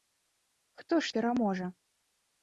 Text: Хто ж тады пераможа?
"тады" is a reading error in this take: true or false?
true